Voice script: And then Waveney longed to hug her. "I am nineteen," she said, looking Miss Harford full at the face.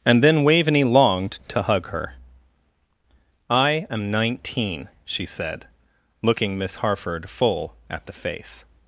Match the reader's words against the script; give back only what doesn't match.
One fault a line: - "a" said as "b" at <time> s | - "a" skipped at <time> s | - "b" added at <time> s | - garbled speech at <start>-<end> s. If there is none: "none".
none